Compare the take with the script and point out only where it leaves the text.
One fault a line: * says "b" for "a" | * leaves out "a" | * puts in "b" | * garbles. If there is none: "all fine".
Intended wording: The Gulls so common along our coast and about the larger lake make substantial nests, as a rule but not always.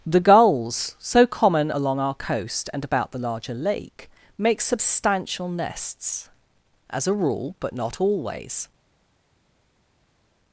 all fine